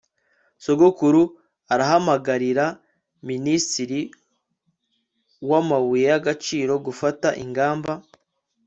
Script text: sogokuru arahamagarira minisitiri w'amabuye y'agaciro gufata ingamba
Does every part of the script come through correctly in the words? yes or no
yes